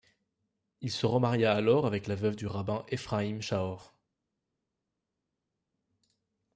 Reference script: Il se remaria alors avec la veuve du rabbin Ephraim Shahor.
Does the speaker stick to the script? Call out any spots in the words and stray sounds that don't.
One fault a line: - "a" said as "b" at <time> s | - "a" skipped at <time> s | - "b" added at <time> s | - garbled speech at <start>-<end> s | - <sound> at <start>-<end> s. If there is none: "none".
none